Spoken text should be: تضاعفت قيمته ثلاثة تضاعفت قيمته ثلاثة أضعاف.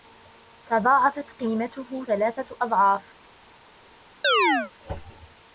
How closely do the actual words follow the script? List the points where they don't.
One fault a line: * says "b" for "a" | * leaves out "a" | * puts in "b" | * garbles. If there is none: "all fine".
* leaves out "تضاعفت قيمته ثلاثة"